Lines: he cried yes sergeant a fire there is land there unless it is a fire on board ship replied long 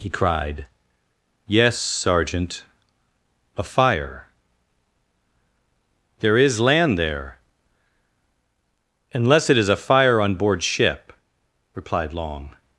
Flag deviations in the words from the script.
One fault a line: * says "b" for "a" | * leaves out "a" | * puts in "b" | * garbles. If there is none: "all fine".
all fine